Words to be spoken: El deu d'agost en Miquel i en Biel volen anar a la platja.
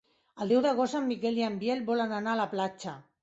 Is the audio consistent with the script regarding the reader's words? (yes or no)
yes